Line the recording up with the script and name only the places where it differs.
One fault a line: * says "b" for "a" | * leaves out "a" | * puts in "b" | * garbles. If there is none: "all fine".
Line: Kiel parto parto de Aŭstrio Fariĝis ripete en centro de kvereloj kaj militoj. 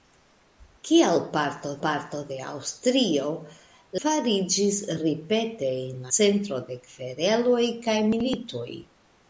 all fine